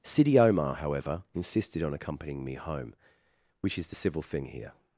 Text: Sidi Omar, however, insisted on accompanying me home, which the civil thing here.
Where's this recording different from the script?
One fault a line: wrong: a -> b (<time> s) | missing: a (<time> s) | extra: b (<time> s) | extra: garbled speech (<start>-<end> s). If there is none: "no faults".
extra: is (3.8 s)